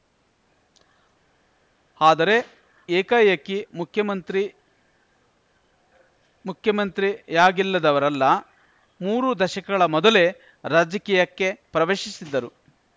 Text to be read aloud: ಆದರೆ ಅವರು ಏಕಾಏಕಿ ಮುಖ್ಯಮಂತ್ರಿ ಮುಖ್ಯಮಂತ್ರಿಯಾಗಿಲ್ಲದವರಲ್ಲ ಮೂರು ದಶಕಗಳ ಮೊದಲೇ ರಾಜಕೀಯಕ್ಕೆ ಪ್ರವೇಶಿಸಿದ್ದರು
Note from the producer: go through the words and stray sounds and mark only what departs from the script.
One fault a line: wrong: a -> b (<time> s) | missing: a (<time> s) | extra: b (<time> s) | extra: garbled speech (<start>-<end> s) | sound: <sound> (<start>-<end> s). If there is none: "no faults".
missing: ಅವರು (2.3 s)